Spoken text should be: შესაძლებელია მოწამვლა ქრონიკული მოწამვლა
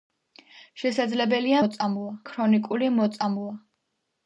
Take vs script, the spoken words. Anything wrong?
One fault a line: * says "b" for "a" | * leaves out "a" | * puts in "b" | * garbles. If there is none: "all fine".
all fine